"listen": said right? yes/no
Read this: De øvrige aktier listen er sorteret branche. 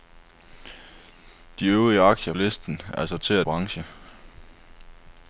yes